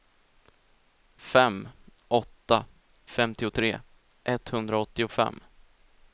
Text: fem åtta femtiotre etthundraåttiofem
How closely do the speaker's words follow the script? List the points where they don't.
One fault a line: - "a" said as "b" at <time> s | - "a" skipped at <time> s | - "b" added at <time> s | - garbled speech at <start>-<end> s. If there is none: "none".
none